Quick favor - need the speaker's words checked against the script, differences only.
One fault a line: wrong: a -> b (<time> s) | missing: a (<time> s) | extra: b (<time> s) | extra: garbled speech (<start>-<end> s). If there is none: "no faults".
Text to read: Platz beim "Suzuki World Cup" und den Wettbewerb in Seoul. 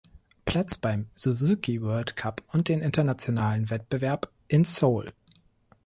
extra: Internationalen (2.8 s)